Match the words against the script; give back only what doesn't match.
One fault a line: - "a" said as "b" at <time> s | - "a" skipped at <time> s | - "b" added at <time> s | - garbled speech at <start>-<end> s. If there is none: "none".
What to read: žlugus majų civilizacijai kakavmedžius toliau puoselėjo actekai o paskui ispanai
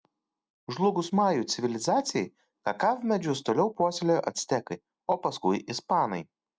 none